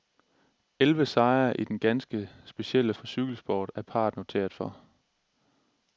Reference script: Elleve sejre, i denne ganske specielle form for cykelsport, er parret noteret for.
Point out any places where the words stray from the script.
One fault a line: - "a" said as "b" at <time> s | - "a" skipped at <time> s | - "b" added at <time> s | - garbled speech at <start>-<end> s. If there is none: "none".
- "form" skipped at 2.9 s